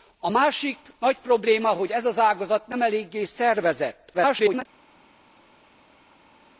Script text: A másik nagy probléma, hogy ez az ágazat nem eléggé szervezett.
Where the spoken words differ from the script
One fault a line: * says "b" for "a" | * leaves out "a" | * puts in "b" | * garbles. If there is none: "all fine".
* garbles